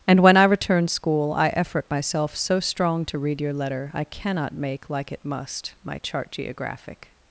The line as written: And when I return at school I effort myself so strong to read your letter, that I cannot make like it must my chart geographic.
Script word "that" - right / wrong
wrong